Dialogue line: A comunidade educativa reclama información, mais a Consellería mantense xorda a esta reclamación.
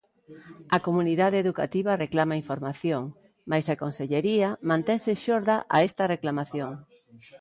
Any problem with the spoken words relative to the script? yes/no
no